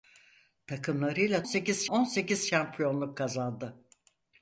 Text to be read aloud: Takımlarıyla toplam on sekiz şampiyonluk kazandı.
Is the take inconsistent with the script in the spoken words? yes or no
yes